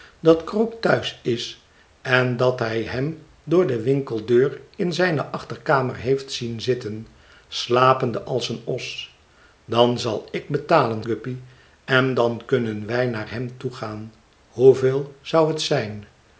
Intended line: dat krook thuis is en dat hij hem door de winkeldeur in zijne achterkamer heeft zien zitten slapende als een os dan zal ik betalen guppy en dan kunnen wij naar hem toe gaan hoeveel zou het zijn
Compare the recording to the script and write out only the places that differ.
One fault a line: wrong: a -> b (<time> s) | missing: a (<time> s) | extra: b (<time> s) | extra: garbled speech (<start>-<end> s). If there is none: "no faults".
no faults